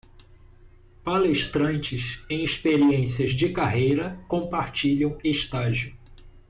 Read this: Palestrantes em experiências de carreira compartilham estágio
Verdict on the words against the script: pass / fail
pass